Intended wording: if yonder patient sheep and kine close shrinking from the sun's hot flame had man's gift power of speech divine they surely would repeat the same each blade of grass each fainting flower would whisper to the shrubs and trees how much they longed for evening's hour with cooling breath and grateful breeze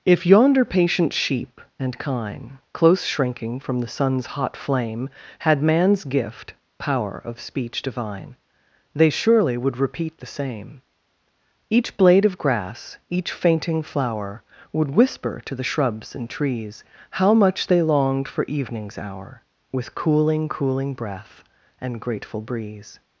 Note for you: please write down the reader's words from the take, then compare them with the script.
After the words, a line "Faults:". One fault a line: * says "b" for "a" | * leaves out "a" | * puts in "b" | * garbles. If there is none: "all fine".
if yonder patient sheep and kine close shrinking from the sun's hot flame had man's gift power of speech divine they surely would repeat the same each blade of grass each fainting flower would whisper to the shrubs and trees how much they longed for evening's hour with cooling cooling breath and grateful breeze
Faults:
* puts in "cooling"